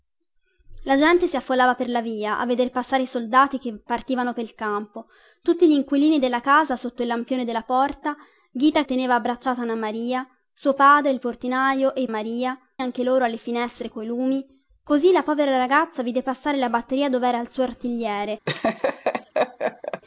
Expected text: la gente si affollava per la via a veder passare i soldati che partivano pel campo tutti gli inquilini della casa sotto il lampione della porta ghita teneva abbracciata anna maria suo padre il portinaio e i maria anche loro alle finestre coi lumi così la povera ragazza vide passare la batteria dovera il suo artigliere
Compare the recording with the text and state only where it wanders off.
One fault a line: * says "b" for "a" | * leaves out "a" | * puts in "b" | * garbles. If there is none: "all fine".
all fine